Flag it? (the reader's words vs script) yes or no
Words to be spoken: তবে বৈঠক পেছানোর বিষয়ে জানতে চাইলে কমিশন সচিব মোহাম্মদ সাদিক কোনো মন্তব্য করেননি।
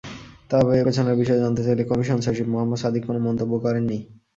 yes